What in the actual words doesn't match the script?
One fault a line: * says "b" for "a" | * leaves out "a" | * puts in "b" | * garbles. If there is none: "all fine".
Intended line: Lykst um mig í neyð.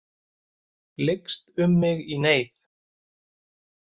all fine